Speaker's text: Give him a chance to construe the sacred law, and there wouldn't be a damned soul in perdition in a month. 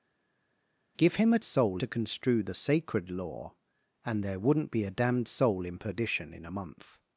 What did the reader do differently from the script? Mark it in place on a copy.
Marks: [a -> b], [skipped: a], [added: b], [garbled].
Give him a [chance -> soul] to construe the sacred law, and there wouldn't be a damned soul in perdition in a month.